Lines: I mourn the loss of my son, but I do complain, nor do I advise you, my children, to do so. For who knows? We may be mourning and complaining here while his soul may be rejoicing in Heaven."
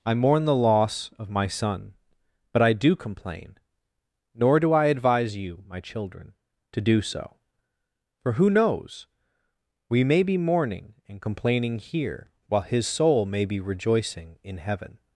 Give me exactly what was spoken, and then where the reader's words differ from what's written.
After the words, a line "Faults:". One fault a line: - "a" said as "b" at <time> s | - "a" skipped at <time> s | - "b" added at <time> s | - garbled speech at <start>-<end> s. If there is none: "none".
I mourn the loss of my son, but I do complain, nor do I advise you, my children, to do so. For who knows? We may be mourning and complaining here while his soul may be rejoicing in Heaven."
Faults:
none